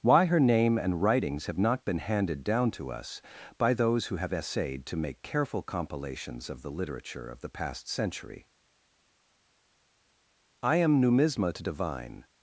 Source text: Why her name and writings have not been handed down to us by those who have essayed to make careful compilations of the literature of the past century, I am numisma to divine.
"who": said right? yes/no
yes